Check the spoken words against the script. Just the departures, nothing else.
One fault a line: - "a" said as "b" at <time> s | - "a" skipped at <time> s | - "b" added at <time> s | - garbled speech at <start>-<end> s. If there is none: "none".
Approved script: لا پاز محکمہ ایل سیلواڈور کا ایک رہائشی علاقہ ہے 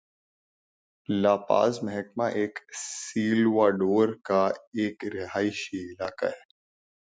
none